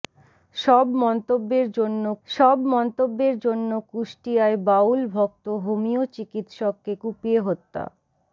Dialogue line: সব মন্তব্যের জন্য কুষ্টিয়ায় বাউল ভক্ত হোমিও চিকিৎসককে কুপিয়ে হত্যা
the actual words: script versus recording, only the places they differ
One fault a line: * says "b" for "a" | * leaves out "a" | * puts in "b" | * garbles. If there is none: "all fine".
* puts in "সব মন্তব্যের জন্য"